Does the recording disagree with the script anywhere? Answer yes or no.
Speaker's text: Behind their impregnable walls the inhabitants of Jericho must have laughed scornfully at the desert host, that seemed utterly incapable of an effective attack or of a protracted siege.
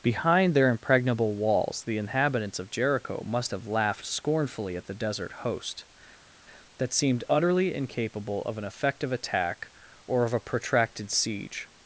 no